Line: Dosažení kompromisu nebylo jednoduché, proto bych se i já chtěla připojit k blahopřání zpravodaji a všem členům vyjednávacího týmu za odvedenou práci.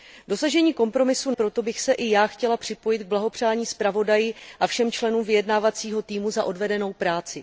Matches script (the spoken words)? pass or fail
fail